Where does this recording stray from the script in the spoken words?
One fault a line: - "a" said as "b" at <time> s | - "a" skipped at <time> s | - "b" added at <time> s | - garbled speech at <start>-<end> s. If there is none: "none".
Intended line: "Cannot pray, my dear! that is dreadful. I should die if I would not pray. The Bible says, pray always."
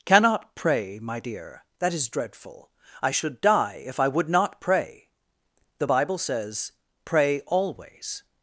none